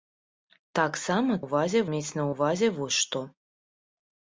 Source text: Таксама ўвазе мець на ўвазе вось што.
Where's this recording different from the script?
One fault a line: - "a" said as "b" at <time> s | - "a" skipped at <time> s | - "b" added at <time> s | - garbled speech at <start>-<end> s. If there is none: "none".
none